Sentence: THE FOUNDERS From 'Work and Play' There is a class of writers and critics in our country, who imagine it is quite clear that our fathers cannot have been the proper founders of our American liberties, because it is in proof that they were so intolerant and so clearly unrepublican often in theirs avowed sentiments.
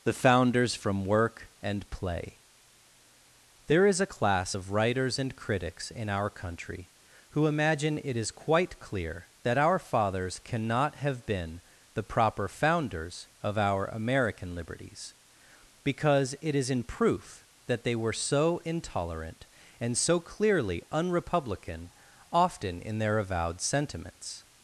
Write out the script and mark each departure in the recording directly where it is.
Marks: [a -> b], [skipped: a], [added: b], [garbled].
THE FOUNDERS From 'Work and Play' There is a class of writers and critics in our country, who imagine it is quite clear that our fathers cannot have been the proper founders of our American liberties, because it is in proof that they were so intolerant and so clearly unrepublican often in [theirs -> their] avowed sentiments.